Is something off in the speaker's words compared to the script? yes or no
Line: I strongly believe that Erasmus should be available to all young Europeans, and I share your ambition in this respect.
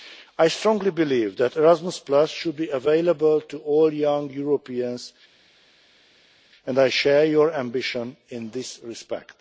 no